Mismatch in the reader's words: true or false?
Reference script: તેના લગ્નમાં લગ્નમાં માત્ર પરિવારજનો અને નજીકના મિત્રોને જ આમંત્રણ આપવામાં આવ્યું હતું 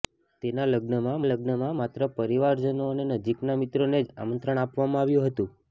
false